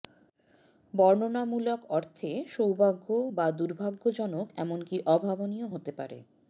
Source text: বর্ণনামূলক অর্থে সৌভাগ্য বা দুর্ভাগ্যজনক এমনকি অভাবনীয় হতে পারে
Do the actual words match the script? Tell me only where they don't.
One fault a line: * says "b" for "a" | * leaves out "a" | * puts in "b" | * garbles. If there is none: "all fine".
all fine